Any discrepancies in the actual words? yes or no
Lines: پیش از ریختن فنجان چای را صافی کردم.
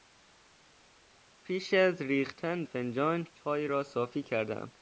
no